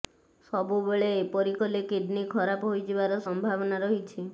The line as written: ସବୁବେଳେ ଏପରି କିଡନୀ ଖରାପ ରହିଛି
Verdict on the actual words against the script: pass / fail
fail